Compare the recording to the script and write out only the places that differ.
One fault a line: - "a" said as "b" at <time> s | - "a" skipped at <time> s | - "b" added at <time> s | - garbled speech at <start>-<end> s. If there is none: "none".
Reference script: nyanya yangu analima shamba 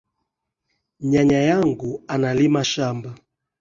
none